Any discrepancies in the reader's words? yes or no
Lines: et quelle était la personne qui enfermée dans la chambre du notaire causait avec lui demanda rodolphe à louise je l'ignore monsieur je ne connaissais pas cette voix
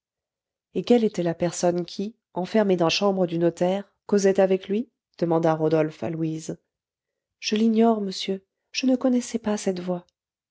yes